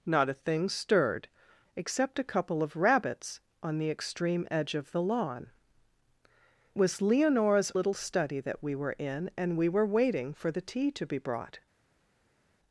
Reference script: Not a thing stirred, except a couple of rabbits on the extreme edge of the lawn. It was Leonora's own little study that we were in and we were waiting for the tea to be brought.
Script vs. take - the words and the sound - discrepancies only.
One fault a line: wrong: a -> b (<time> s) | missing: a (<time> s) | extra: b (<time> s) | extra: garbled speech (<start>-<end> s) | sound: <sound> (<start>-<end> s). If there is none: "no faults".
missing: It (5.5 s)
missing: own (7.7 s)